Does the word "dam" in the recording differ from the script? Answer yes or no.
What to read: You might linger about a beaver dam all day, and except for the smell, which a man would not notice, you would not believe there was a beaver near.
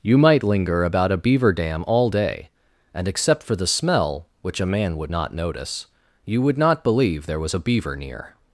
no